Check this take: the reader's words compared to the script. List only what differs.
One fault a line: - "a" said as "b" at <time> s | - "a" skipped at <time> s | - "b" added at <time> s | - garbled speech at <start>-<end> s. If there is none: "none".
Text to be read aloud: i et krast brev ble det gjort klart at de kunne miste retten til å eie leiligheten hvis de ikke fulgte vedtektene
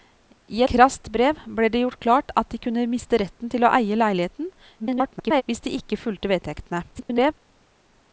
- "et" skipped at 0.6 s
- garbled speech at 4.8-5.4 s
- garbled speech at 6.9-7.3 s